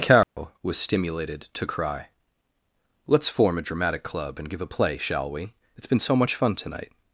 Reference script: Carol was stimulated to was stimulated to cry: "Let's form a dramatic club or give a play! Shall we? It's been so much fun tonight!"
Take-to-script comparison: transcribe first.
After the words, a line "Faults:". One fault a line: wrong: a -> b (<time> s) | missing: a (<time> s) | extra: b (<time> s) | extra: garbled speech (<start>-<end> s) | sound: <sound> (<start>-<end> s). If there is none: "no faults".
Carol was stimulated to cry: "Let's form a dramatic club and give a play! Shall we? It's been so much fun tonight!"
Faults:
sound: dropout (0.2-0.4 s)
missing: was stimulated to (1.7 s)
wrong: or -> and (4.4 s)